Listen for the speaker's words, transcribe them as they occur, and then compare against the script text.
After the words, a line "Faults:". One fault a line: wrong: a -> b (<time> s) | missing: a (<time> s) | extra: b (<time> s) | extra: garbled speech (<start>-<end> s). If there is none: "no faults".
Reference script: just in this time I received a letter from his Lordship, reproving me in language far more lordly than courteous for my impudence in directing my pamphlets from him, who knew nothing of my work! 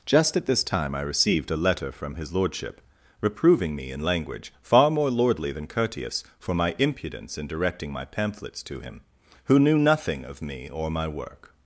just at this time I received a letter from his Lordship, reproving me in language far more lordly than courteous for my impudence in directing my pamphlets to him, who knew nothing of me or my work!
Faults:
wrong: in -> at (0.3 s)
wrong: from -> to (8.6 s)
extra: me or (10.4 s)